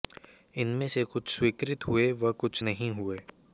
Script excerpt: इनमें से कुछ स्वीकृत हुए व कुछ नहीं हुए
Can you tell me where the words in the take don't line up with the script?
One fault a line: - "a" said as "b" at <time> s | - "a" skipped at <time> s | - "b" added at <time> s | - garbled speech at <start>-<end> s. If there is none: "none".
none